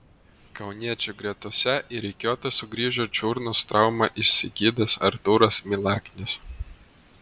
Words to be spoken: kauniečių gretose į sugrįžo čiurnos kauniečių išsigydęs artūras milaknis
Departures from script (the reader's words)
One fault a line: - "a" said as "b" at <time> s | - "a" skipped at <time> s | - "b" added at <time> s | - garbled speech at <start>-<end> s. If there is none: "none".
- "rikiuotę" added at 2.0 s
- "kauniečių" said as "traumą" at 3.7 s